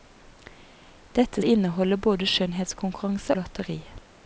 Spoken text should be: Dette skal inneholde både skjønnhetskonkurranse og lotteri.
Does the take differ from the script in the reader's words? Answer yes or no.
yes